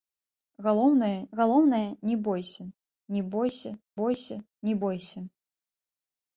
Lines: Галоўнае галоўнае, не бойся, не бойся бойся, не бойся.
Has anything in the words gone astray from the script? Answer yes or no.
no